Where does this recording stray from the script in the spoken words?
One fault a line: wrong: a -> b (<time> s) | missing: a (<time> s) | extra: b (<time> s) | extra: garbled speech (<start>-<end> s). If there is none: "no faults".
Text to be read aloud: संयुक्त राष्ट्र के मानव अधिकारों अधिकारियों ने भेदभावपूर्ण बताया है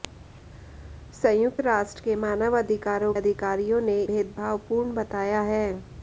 no faults